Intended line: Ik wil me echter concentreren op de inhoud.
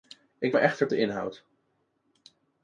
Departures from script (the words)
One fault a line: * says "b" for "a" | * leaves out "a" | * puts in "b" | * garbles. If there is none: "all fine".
* leaves out "wil"
* leaves out "concentreren op"